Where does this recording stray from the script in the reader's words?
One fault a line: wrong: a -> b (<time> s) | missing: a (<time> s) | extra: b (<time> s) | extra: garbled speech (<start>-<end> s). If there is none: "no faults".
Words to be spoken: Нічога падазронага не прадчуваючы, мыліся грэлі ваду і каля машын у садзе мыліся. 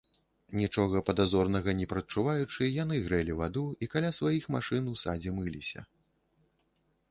wrong: мыліся -> яны (2.8 s)
extra: сваіх (4.2 s)